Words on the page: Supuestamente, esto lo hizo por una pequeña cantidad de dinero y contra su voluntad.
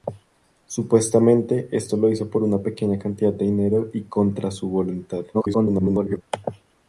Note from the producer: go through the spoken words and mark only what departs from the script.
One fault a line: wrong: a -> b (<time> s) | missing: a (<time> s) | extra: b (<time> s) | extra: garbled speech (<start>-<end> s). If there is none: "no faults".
extra: garbled speech (5.3-6.2 s)